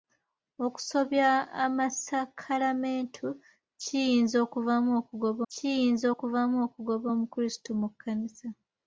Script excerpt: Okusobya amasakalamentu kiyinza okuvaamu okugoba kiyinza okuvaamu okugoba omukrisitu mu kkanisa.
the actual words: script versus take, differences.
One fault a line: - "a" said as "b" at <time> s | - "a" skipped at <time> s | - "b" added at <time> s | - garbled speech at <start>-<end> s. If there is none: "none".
none